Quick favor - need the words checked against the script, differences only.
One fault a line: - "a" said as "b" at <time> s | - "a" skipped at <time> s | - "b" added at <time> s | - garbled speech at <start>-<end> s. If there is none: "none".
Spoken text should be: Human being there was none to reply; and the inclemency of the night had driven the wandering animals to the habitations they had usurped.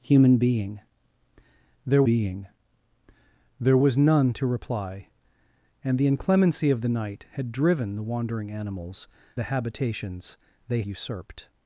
- "being there" added at 2.0 s
- "to" skipped at 9.1 s
- "had" skipped at 10.8 s